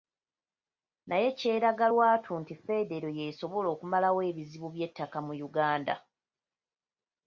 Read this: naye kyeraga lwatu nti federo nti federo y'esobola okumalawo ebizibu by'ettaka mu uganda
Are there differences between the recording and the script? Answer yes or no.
yes